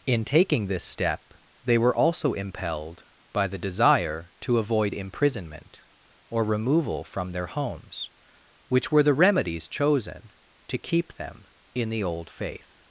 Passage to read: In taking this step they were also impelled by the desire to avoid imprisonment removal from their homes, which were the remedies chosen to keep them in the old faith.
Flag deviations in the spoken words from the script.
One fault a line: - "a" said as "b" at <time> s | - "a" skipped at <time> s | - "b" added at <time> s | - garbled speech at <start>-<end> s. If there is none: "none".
- "or" added at 6.3 s